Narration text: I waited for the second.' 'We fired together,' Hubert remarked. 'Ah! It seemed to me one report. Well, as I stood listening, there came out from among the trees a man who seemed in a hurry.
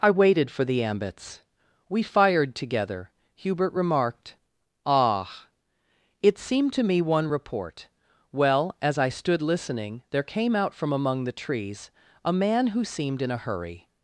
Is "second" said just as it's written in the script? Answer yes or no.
no